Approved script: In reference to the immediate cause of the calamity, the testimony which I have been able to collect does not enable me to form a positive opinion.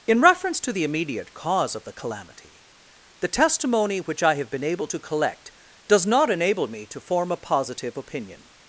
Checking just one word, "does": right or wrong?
right